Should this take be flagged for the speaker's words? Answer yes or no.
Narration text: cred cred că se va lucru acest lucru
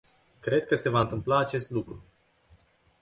yes